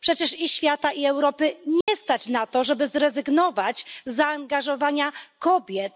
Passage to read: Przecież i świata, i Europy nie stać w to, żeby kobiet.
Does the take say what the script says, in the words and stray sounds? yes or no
no